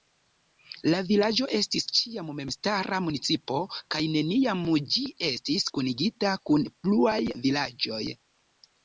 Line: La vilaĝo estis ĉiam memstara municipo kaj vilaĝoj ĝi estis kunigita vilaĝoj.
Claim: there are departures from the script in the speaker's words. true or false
true